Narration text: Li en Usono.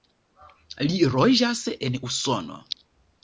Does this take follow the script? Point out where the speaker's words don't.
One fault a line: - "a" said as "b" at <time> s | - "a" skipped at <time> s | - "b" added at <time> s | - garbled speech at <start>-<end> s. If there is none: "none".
- "loĝas" added at 1.2 s